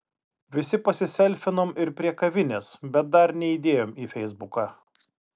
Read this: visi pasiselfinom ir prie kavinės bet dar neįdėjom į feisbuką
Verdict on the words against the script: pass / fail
pass